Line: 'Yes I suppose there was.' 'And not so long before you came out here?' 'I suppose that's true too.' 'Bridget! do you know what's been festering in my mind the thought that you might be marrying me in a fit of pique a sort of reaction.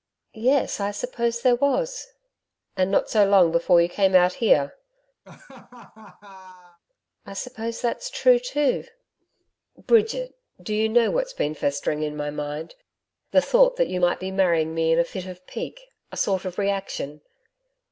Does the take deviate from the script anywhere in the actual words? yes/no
no